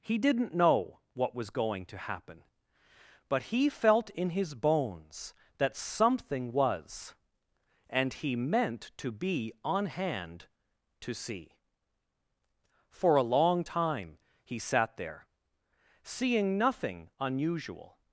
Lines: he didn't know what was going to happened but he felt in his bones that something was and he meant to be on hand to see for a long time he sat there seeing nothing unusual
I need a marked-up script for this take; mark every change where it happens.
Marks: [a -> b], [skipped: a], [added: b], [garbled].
he didn't know what was going to [happened -> happen] but he felt in his bones that something was and he meant to be on hand to see for a long time he sat there seeing nothing unusual